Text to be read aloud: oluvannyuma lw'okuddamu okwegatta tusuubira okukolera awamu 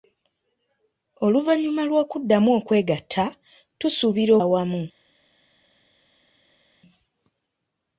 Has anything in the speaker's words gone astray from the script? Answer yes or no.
yes